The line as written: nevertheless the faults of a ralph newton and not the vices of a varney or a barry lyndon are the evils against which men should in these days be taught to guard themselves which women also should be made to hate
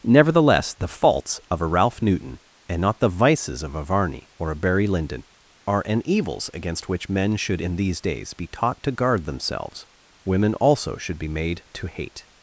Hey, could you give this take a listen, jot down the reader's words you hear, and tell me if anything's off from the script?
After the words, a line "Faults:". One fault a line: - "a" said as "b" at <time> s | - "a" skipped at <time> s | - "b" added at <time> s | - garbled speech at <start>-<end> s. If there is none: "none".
nevertheless the faults of a ralph newton and not the vices of a varney or a barry lyndon are an evils against which men should in these days be taught to guard themselves women also should be made to hate
Faults:
- "the" said as "an" at 5.8 s
- "which" skipped at 9.9 s